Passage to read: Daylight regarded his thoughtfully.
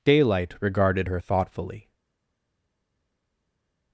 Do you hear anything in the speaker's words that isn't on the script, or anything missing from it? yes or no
yes